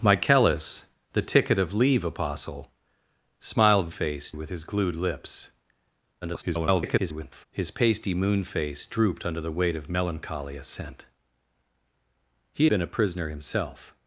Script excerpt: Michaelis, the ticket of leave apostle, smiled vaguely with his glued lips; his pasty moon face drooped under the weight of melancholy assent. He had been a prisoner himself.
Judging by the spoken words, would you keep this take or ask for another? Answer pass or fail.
fail